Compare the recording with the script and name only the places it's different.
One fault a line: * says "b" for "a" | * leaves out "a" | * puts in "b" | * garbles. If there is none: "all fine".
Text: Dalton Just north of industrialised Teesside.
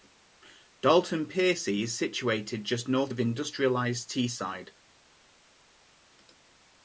* puts in "Piercy is situated"